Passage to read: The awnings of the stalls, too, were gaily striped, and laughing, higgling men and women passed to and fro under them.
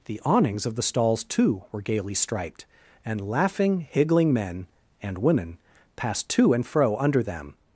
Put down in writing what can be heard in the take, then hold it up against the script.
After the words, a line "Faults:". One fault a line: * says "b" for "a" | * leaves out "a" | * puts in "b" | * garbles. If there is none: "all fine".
The awnings of the stalls, too, were gaily striped, and laughing, higgling men and women passed to and fro under them.
Faults:
all fine